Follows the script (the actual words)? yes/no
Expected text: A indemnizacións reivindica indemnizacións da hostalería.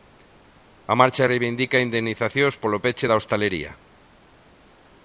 no